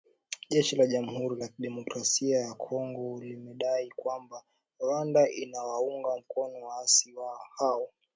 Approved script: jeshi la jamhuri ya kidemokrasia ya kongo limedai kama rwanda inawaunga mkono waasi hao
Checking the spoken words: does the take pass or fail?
fail